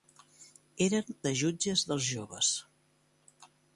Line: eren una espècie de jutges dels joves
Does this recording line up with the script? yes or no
no